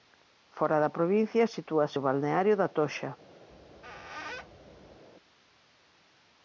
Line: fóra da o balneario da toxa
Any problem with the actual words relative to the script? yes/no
yes